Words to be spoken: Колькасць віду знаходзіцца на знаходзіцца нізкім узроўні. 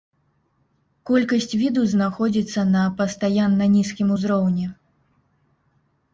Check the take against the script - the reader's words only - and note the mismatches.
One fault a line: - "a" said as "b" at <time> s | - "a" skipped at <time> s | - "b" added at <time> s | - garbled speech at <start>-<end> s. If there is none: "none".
- "знаходзіцца" said as "пастаянна" at 3.0 s